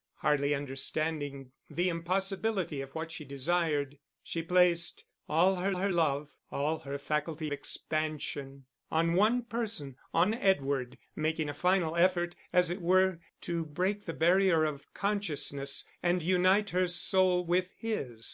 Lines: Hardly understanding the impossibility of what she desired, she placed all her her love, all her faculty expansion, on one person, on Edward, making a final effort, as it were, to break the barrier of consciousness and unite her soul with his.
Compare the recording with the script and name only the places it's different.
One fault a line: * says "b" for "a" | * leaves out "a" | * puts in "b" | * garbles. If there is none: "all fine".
all fine